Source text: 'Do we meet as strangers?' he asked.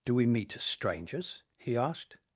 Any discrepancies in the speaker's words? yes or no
no